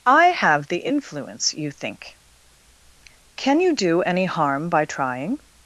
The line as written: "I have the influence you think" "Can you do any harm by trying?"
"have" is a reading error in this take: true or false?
false